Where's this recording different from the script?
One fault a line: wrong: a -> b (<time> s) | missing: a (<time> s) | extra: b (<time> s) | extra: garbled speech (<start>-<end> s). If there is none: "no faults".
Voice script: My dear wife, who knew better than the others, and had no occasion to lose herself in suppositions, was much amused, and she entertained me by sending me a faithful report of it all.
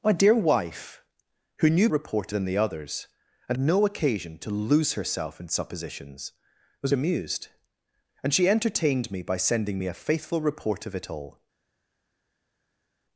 wrong: better -> report (1.9 s)
missing: had (3.6 s)
missing: much (6.9 s)